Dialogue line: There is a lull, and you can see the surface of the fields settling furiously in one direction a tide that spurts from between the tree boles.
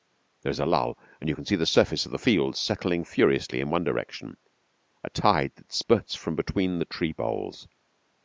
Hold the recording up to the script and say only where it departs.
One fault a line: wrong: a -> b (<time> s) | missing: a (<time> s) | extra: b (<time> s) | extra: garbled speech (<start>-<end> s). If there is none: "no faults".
no faults